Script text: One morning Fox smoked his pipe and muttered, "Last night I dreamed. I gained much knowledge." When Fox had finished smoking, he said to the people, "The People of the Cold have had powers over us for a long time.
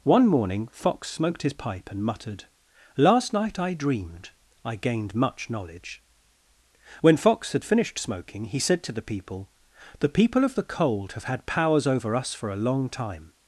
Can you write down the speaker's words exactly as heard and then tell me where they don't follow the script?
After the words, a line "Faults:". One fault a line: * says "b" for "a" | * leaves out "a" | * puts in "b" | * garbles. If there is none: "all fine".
One morning Fox smoked his pipe and muttered, "Last night I dreamed. I gained much knowledge." When Fox had finished smoking, he said to the people, "The People of the Cold have had powers over us for a long time.
Faults:
all fine